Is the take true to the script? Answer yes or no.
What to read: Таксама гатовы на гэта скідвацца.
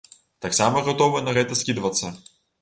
yes